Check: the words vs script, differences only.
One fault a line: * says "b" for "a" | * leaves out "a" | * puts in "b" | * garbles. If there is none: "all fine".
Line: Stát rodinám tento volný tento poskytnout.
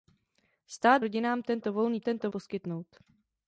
all fine